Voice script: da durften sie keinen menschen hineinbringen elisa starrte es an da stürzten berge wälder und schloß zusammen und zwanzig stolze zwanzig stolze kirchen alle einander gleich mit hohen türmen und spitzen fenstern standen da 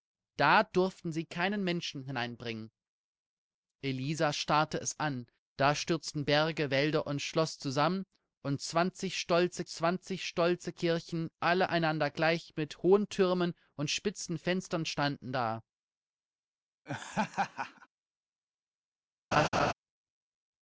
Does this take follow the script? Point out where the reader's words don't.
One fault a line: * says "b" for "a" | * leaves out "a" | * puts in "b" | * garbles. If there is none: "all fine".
all fine